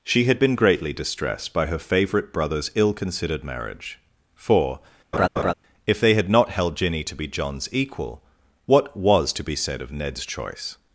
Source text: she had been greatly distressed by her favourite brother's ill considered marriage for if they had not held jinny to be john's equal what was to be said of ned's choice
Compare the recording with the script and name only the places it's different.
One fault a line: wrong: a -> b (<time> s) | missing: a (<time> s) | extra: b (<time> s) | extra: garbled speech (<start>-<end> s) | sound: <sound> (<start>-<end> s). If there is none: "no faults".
sound: laugh (5.1-5.5 s)